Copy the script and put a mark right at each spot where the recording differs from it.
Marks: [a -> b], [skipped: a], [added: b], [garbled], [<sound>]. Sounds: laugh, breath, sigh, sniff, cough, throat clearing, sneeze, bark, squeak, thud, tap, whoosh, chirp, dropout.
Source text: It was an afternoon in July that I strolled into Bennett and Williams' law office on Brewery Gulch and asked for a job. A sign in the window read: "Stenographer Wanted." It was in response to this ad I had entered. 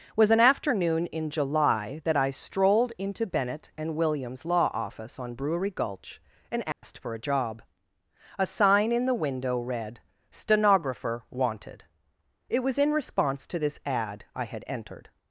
[skipped: It] was an afternoon in July that I strolled into Bennett and Williams' law office on Brewery Gulch and asked [dropout] for a job. A sign in the window read: "Stenographer Wanted." It was in response to this ad I had entered.